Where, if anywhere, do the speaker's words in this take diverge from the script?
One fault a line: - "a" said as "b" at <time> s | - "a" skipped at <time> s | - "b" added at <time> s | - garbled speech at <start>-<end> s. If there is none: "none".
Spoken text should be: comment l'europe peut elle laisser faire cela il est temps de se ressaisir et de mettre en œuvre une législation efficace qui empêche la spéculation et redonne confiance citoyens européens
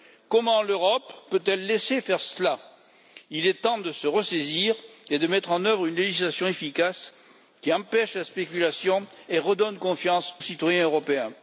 none